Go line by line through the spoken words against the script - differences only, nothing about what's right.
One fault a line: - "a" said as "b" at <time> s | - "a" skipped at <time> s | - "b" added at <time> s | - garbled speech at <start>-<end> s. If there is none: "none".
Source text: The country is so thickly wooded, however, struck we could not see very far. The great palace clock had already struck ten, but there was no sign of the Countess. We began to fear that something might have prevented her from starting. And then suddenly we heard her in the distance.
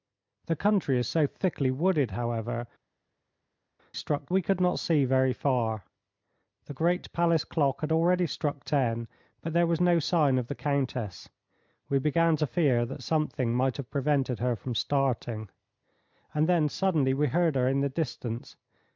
none